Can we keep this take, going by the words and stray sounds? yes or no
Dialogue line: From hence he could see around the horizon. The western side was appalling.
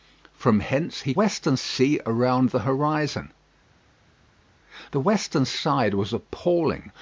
no